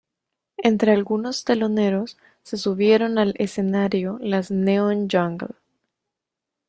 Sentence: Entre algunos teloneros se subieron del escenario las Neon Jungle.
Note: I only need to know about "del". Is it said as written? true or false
false